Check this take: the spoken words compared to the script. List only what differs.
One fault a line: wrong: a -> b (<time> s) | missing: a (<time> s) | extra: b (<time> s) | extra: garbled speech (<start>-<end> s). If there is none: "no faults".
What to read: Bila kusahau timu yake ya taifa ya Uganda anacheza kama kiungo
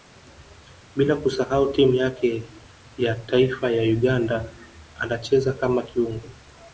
no faults